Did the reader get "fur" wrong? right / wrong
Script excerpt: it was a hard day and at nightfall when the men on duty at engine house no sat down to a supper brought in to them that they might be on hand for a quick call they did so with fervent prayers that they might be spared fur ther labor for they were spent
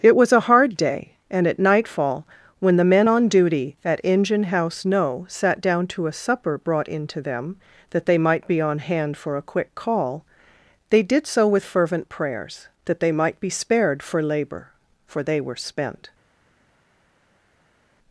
wrong